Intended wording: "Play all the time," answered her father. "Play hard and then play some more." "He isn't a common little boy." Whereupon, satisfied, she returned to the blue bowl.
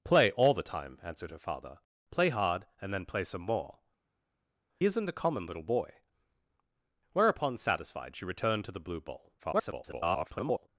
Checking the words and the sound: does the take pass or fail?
fail